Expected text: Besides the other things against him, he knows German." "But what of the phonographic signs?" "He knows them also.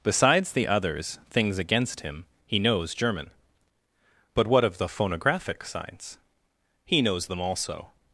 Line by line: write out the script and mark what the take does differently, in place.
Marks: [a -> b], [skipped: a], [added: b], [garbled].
Besides the [other -> others] things against him, he knows German." "But what of the phonographic signs?" "He knows them also.